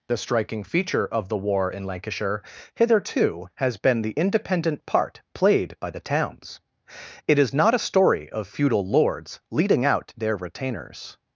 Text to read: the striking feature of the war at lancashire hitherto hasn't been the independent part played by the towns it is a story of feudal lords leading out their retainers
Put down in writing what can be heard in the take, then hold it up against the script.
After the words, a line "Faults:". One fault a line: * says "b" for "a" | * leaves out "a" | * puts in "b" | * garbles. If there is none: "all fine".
the striking feature of the war in lancashire hitherto has been the independent part played by the towns it is not a story of feudal lords leading out their retainers
Faults:
* says "in" for "at"
* says "has" for "hasn't"
* puts in "not"